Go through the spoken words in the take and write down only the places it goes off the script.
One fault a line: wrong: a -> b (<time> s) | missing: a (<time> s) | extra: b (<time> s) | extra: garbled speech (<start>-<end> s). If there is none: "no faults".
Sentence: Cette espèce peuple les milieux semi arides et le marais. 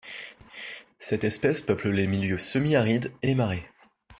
wrong: le -> les (3.2 s)